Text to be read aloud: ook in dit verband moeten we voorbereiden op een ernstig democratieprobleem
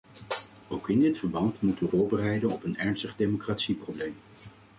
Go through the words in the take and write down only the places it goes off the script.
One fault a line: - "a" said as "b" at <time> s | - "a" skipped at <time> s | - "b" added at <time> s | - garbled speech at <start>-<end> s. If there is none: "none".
none